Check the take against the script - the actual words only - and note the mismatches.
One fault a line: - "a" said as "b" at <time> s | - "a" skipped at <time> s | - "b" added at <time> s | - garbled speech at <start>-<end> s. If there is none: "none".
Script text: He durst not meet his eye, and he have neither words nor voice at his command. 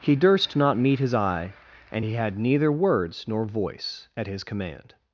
- "have" said as "had" at 2.1 s